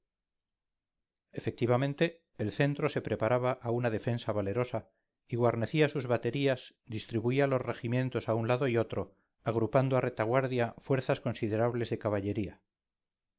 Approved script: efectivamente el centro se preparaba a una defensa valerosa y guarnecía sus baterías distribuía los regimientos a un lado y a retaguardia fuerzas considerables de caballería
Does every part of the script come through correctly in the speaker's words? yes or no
no